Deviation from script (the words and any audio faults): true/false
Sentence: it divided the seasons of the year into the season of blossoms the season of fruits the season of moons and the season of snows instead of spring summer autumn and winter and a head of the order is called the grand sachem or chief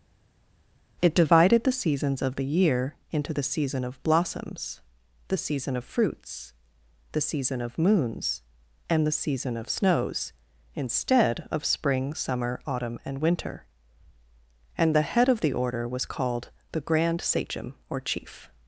true